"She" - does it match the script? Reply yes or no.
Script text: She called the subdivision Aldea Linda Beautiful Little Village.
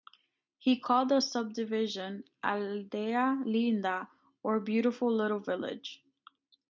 no